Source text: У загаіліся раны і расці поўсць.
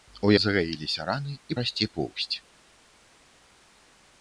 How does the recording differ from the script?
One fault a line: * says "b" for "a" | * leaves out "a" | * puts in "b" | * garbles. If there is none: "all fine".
all fine